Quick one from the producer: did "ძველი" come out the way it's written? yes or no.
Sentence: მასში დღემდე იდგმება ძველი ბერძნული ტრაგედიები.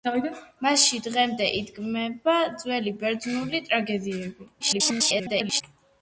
yes